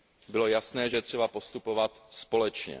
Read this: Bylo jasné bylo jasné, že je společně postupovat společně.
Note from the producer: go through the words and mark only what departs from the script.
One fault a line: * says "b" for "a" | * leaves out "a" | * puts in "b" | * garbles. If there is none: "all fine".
* leaves out "bylo jasné"
* says "třeba" for "společně"